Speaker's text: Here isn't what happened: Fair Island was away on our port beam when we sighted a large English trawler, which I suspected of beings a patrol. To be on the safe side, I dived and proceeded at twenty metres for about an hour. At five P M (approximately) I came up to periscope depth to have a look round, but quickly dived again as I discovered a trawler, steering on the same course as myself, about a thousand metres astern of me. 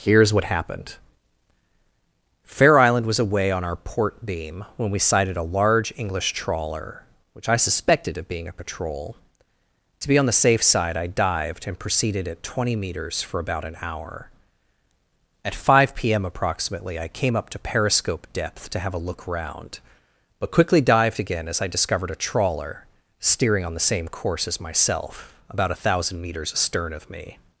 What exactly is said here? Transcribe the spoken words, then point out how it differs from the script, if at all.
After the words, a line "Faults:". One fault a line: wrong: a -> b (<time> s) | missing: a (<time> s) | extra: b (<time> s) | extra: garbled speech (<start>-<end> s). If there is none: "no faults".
Here is what happened: Fair Island was away on our port beam when we sighted a large English trawler, which I suspected of being a patrol. To be on the safe side, I dived and proceeded at twenty metres for about an hour. At five P M (approximately) I came up to periscope depth to have a look round, but quickly dived again as I discovered a trawler, steering on the same course as myself, about a thousand metres astern of me.
Faults:
wrong: isn't -> is (0.2 s)
wrong: beings -> being (8.3 s)